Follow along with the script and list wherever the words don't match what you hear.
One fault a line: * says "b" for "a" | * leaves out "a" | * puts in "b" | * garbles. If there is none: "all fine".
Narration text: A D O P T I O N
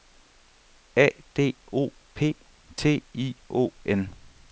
all fine